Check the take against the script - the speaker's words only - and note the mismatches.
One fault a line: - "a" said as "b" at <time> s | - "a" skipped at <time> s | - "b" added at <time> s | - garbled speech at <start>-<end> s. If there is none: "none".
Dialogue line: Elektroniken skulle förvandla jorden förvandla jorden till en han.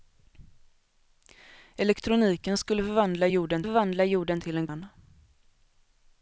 none